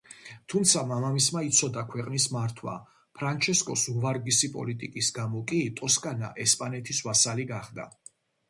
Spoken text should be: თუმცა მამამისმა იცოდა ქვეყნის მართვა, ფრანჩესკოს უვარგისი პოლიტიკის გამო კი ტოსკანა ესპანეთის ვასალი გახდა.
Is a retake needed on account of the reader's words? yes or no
no